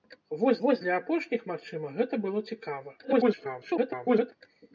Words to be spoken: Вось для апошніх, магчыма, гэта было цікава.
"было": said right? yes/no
yes